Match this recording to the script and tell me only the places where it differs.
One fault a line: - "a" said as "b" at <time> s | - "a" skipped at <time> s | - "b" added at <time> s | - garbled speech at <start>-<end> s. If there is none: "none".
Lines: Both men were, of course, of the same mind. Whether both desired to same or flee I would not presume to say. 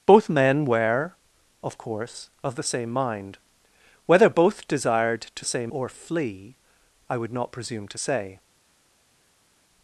none